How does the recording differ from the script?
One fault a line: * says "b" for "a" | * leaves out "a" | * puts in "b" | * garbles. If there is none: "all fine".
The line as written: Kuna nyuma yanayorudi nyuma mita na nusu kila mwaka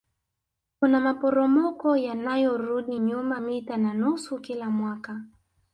* says "maporomoko" for "nyuma"